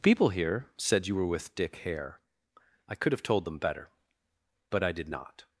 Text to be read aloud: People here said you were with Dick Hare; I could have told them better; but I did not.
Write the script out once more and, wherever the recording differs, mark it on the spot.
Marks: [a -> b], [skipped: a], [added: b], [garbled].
People here said you were with Dick Hare; I could have told them better; but I did not.